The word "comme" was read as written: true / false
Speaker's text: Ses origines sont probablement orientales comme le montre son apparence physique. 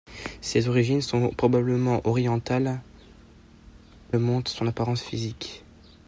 false